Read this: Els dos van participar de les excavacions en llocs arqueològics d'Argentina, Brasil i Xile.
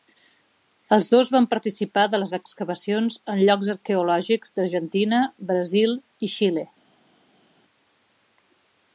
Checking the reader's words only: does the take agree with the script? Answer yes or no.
yes